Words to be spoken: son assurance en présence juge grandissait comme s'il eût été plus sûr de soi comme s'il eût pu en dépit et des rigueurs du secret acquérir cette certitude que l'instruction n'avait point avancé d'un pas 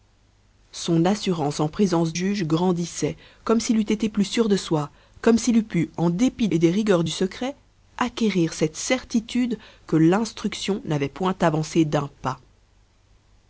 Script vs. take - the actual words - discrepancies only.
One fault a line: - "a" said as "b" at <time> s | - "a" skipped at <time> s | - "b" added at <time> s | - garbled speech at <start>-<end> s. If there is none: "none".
none